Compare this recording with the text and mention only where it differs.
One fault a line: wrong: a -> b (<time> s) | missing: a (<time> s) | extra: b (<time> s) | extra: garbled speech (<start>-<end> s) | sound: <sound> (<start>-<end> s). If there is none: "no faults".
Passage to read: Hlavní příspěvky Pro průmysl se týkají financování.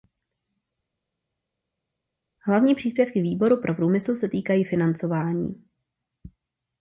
extra: Výboru (3.2 s)